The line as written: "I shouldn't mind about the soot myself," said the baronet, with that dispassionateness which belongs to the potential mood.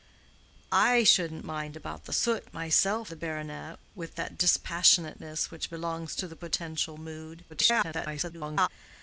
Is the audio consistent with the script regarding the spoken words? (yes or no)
no